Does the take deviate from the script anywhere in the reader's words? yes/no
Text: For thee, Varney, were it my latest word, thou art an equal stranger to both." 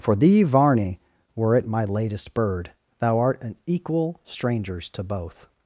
yes